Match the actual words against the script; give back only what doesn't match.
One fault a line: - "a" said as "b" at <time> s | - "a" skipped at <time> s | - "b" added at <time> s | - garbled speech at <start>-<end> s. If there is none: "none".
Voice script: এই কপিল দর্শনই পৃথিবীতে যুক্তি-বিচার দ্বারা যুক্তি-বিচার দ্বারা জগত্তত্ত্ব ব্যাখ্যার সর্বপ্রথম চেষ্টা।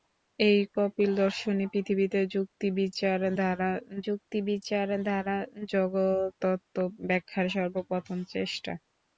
none